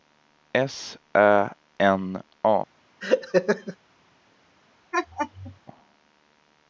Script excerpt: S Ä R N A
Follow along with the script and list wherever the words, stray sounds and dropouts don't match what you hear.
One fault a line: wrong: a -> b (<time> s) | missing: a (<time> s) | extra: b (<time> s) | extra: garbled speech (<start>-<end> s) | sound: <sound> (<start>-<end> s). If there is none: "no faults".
missing: R (1.5 s)
sound: laugh (3.0-3.8 s)
sound: laugh (4.9-5.6 s)